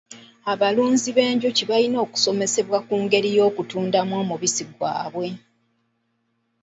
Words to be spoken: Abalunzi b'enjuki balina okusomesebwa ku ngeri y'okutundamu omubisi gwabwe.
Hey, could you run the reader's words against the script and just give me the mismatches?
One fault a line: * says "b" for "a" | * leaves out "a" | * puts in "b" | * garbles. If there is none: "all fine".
all fine